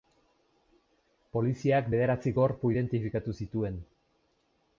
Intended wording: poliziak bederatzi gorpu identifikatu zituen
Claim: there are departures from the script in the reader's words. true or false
false